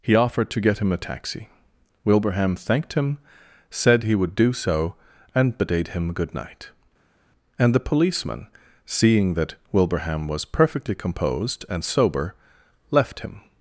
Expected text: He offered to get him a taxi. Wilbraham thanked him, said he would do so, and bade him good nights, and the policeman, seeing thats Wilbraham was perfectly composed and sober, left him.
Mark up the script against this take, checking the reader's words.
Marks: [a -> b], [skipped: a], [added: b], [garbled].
He offered to get him a taxi. Wilbraham thanked him, said he would do so, and bade him good [nights, -> night] and the policeman, seeing [thats -> that] Wilbraham was perfectly composed and sober, left him.